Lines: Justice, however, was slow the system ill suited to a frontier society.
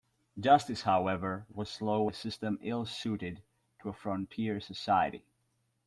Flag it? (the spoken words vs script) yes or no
no